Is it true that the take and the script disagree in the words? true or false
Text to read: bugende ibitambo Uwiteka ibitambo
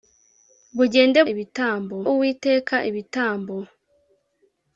false